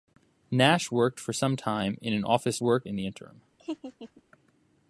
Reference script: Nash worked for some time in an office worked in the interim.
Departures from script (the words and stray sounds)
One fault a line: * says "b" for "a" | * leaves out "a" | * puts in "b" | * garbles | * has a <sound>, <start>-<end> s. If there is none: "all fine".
* has a laugh, 3.6-4.2 s